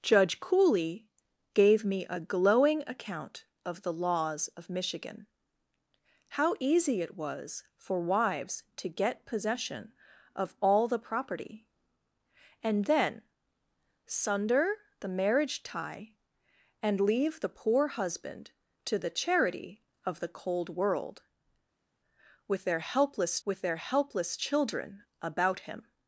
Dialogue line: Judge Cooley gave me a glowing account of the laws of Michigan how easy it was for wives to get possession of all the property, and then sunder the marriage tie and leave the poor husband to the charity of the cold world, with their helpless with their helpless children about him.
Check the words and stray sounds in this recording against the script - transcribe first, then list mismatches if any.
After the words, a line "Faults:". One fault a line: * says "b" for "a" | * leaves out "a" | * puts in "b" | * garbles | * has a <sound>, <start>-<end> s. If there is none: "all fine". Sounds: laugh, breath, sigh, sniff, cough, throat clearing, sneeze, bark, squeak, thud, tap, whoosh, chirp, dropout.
Judge Cooley gave me a glowing account of the laws of Michigan how easy it was for wives to get possession of all the property, and then sunder the marriage tie and leave the poor husband to the charity of the cold world, with their helpless with their helpless children about him.
Faults:
all fine